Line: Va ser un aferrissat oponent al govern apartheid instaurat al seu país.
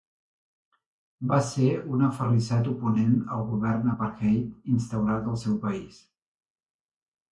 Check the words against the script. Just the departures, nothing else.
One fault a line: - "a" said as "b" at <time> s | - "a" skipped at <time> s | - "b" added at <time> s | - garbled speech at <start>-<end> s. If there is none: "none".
none